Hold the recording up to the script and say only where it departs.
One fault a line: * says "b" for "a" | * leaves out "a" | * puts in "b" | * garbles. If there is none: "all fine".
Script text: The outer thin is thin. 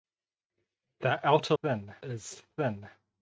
all fine